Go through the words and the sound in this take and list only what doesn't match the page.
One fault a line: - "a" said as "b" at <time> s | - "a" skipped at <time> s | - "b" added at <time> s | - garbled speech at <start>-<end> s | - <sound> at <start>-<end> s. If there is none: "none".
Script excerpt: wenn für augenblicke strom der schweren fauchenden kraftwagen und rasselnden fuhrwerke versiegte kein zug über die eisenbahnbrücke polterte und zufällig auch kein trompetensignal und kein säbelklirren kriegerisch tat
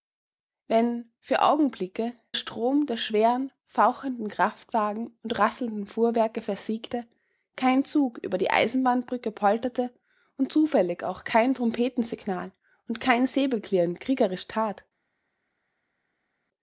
none